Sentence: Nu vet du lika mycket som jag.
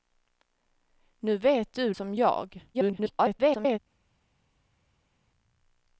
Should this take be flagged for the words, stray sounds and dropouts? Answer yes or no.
yes